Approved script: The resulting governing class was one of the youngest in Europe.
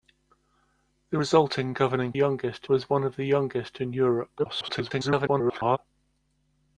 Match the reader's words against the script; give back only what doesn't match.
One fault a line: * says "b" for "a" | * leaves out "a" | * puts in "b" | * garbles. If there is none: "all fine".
* says "youngest" for "class"
* garbles